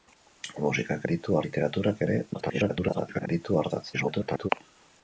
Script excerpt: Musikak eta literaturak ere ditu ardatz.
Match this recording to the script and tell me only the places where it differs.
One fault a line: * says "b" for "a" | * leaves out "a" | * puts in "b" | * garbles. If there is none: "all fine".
* says "ditu" for "eta"
* garbles
* garbles